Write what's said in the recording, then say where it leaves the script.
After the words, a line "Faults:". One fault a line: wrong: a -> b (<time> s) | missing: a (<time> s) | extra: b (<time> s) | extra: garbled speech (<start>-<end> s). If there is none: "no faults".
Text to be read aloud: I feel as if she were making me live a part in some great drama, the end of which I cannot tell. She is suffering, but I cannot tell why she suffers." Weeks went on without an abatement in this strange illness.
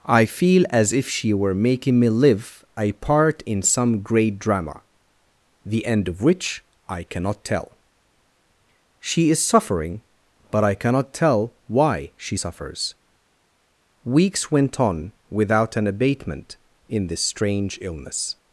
I feel as if she were making me live a part in some great drama, the end of which I cannot tell. She is suffering, but I cannot tell why she suffers." Weeks went on without an abatement in this strange illness.
Faults:
no faults